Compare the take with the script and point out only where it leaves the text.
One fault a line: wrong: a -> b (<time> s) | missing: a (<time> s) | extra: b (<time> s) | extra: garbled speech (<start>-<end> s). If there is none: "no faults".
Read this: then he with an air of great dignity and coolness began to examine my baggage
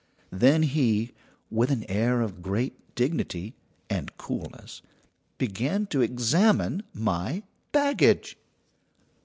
no faults